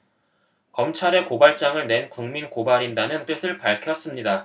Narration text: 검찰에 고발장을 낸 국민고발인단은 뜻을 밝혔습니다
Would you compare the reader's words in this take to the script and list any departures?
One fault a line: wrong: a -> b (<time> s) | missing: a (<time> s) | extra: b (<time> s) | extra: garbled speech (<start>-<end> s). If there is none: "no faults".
no faults